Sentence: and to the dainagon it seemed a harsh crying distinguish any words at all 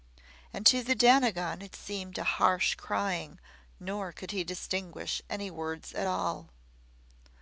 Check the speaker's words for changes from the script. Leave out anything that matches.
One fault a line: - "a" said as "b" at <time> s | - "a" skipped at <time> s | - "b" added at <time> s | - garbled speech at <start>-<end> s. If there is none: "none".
- "nor could he" added at 3.8 s